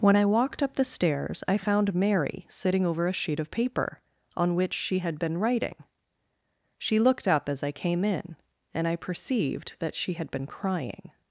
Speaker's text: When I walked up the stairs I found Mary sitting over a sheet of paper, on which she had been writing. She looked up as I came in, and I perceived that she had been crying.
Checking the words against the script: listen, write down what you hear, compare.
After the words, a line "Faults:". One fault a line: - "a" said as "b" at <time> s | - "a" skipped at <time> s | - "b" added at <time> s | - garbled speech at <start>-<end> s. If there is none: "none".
When I walked up the stairs I found Mary sitting over a sheet of paper, on which she had been writing. She looked up as I came in, and I perceived that she had been crying.
Faults:
none